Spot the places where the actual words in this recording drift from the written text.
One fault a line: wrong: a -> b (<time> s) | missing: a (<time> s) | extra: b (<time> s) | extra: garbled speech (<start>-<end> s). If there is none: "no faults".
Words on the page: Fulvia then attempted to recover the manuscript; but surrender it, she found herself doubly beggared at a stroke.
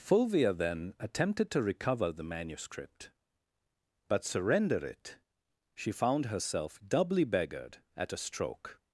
no faults